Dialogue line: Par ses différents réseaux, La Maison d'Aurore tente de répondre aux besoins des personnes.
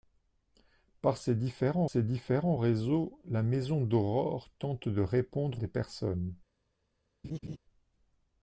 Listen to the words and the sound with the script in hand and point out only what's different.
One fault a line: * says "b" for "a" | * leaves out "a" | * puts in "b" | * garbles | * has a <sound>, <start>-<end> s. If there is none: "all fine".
* puts in "ses différents"
* leaves out "aux besoins"
* has a laugh, 7.2-7.6 s